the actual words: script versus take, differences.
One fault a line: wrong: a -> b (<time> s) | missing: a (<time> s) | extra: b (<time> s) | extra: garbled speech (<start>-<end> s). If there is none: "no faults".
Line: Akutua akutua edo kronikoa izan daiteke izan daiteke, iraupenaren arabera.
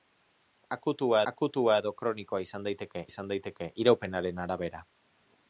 no faults